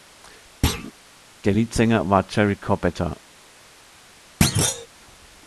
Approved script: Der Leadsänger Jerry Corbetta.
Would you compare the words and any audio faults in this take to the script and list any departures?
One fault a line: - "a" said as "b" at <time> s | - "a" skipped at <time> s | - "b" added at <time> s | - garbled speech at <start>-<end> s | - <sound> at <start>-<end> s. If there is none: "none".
- thud at 0.6-0.9 s
- "war" added at 2.1 s
- thud at 4.4-4.9 s